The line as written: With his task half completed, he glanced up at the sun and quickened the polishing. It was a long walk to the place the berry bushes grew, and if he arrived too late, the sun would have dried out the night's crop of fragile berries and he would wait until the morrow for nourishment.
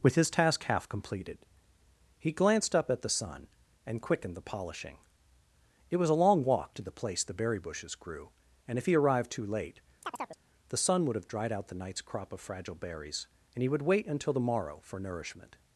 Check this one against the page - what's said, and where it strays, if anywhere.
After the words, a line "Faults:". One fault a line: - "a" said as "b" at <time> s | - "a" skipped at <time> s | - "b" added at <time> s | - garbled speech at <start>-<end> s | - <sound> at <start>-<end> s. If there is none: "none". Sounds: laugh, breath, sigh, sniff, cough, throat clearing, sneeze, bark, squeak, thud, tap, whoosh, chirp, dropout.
With his task half completed, he glanced up at the sun and quickened the polishing. It was a long walk to the place the berry bushes grew, and if he arrived too late, the sun would have dried out the night's crop of fragile berries and he would wait until the morrow for nourishment.
Faults:
- chirp at 10.0-10.4 s